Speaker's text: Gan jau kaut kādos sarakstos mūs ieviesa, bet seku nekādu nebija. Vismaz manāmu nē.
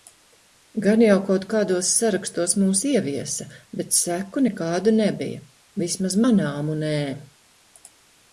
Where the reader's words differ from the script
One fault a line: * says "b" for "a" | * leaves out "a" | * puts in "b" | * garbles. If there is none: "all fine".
all fine